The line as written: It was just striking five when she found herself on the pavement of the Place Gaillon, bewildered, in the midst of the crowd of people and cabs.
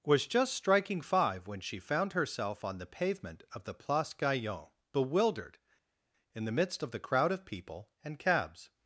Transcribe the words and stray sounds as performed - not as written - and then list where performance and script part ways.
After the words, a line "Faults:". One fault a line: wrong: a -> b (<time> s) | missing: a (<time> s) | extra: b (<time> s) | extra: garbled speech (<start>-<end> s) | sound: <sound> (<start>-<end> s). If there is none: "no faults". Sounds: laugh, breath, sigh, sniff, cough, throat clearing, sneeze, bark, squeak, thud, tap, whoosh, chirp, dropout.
was just striking five when she found herself on the pavement of the Place Gaillon, bewildered, in the midst of the crowd of people and cabs.
Faults:
missing: It (0.0 s)